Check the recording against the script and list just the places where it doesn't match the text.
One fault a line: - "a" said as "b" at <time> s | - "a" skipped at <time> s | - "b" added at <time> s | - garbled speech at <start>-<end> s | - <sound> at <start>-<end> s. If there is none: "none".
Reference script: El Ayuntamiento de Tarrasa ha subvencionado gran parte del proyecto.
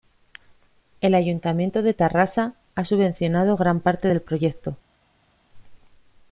none